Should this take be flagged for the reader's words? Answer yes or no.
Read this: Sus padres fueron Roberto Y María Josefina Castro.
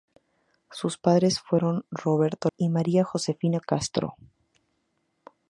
no